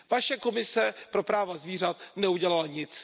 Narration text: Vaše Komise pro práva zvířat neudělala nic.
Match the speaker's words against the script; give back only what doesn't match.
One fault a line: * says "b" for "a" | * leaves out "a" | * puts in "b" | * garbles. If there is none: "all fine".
all fine